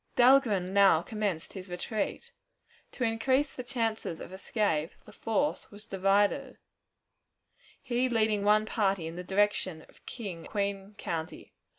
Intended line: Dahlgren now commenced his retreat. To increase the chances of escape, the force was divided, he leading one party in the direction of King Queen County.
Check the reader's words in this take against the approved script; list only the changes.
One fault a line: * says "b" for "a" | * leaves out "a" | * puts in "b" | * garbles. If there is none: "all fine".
all fine